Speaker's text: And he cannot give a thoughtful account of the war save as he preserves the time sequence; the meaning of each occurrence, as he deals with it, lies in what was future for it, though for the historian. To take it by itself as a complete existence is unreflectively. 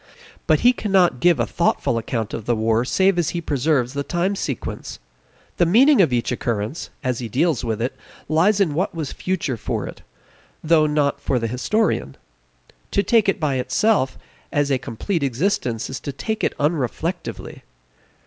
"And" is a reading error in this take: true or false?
true